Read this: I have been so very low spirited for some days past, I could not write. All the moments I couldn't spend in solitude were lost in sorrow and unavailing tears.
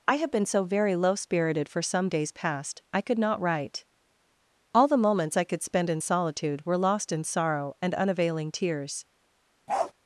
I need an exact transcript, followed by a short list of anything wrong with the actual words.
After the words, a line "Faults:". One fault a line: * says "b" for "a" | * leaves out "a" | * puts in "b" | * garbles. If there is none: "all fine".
I have been so very low spirited for some days past, I could not write. All the moments I could spend in solitude were lost in sorrow and unavailing tears.
Faults:
* says "could" for "couldn't"